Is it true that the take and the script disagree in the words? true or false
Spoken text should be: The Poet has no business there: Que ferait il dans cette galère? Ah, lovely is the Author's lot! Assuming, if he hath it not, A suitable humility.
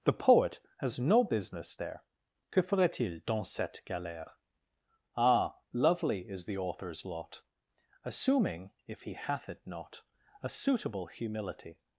false